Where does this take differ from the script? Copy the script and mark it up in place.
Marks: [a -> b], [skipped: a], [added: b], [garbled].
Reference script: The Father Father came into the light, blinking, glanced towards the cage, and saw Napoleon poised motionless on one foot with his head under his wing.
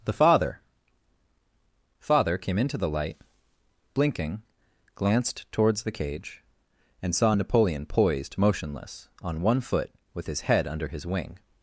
The Father Father came into the light, blinking, glanced towards the cage, and saw Napoleon poised motionless on one foot with his head under his wing.